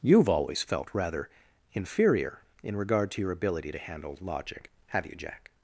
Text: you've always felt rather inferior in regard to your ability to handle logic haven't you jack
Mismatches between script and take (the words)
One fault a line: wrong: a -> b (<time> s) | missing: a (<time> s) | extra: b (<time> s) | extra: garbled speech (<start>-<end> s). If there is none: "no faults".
wrong: haven't -> have (4.9 s)